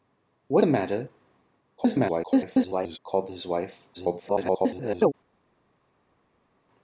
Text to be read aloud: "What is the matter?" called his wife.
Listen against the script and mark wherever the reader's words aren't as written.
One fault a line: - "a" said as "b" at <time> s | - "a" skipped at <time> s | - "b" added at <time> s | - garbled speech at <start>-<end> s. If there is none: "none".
- "is" skipped at 0.6 s
- garbled speech at 1.8-3.0 s
- garbled speech at 3.9-5.1 s